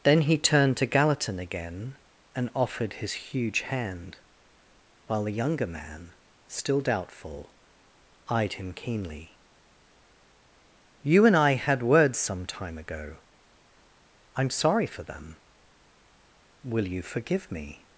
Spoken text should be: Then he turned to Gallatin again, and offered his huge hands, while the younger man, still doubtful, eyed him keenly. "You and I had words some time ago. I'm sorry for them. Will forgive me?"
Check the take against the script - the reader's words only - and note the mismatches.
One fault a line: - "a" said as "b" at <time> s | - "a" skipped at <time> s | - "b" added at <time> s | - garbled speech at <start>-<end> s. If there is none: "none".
- "hands" said as "hand" at 3.6 s
- "you" added at 16.9 s